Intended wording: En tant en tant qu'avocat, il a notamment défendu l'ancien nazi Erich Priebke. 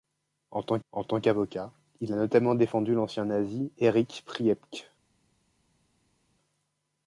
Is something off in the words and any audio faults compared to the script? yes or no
no